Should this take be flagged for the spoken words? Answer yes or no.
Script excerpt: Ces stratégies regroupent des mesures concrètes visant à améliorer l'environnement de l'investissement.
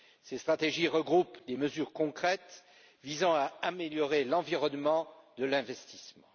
no